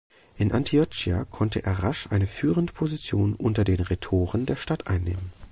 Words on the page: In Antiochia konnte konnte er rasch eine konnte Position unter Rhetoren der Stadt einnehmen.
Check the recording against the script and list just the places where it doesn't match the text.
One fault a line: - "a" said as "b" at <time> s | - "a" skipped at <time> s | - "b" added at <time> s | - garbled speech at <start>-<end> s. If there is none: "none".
- "konnte" skipped at 1.6 s
- "konnte" said as "führende" at 2.3 s
- "den" added at 3.6 s